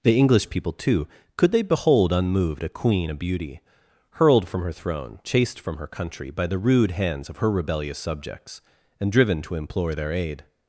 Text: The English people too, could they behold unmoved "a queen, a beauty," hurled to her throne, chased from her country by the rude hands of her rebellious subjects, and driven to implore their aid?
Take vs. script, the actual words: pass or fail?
fail